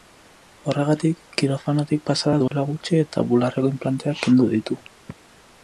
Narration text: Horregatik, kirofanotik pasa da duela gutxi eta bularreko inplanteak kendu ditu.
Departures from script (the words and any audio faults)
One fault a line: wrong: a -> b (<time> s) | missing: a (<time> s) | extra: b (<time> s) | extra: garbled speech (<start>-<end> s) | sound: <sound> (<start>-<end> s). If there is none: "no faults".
sound: dropout (2.5-2.5 s)